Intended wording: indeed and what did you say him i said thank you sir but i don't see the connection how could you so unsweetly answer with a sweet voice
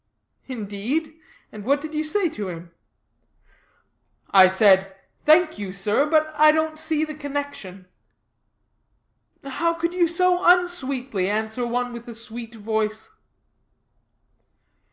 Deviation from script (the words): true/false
true